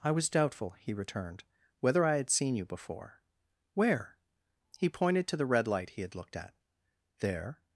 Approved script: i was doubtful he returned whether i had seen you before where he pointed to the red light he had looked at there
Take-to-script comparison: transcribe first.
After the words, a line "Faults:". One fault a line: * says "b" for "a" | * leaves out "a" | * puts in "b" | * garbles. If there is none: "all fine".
i was doubtful he returned whether i had seen you before where he pointed to the red light he had looked at there
Faults:
all fine